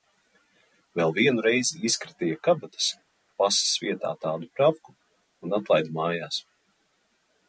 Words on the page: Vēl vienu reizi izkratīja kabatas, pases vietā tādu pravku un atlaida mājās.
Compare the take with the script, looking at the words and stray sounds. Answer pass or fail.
pass